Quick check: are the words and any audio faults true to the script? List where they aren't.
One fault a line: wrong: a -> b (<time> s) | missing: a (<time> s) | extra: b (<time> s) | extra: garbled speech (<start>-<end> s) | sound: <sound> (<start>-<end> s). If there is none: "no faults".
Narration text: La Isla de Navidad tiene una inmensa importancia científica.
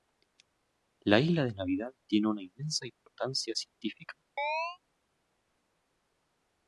sound: dropout (2.9-3.1 s)
sound: chirp (4.4-4.8 s)